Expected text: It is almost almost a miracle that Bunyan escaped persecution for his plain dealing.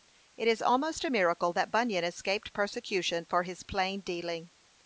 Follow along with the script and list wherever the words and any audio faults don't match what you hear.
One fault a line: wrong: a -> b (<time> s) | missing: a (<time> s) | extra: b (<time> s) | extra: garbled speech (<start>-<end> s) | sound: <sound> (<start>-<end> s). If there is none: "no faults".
missing: almost (1.1 s)